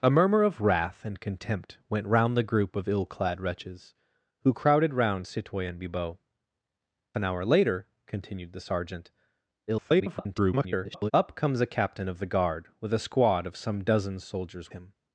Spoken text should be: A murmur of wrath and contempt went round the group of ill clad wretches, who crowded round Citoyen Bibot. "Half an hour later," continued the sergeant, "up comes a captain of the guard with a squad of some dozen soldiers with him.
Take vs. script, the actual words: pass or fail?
fail